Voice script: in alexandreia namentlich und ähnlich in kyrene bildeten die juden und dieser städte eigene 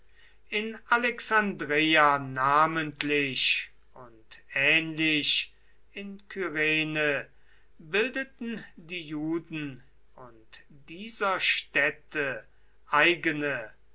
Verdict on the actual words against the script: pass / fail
pass